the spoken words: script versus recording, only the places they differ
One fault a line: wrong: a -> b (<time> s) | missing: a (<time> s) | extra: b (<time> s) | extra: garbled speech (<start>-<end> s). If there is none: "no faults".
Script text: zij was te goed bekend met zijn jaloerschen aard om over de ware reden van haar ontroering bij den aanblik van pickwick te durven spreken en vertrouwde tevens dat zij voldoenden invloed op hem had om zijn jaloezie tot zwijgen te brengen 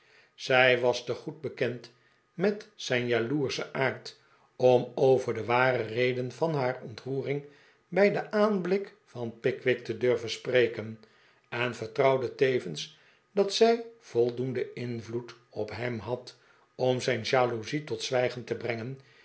no faults